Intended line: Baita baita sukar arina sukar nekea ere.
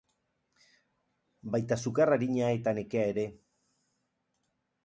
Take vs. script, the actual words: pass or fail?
fail